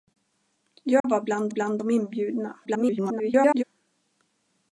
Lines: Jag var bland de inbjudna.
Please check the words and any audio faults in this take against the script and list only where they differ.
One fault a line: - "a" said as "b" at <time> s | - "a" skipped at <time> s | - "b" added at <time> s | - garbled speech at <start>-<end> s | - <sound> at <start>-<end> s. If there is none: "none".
- dropout at 1.0-1.0 s
- "bland" added at 1.5 s
- garbled speech at 2.6-3.6 s